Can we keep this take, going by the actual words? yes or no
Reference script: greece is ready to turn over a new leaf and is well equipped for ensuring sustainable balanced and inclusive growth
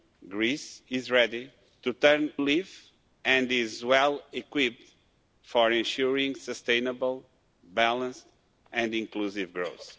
no